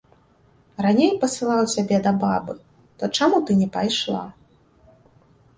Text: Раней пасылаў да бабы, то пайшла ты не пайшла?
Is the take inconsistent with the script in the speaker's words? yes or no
yes